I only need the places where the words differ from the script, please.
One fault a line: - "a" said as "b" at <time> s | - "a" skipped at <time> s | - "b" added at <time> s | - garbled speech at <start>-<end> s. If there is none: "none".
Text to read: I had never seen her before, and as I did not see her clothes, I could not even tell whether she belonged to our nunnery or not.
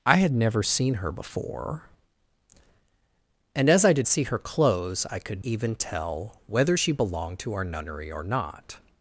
- "not" skipped at 4.1 s
- "not" skipped at 5.4 s